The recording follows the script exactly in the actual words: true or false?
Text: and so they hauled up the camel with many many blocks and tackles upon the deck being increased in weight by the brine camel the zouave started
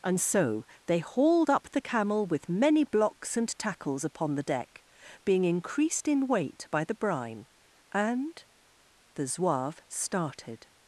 false